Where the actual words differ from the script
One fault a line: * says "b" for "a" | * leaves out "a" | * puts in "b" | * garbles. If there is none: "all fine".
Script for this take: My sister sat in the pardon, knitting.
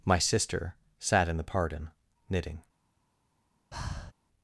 all fine